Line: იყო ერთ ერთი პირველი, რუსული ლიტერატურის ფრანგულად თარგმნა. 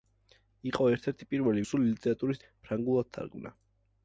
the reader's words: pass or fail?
pass